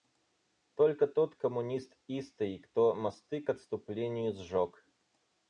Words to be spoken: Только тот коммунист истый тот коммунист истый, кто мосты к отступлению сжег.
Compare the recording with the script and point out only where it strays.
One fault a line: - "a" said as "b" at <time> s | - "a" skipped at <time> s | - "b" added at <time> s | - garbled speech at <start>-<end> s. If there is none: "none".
- "тот коммунист истый" skipped at 2.6 s